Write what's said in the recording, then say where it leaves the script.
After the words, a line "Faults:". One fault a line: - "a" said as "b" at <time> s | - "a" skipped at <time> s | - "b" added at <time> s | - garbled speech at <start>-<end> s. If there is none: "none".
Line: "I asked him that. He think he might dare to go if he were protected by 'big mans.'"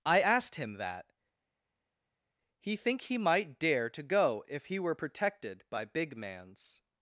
"I asked him that. He think he might dare to go if he were protected by 'big mans.'"
Faults:
none